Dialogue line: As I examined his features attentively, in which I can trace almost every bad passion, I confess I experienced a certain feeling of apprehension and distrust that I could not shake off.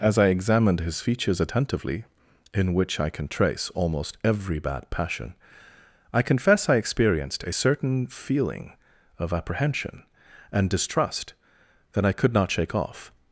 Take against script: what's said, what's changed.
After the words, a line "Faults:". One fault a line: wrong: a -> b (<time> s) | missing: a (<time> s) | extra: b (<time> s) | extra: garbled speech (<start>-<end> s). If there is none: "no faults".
As I examined his features attentively, in which I can trace almost every bad passion, I confess I experienced a certain feeling of apprehension and distrust that I could not shake off.
Faults:
no faults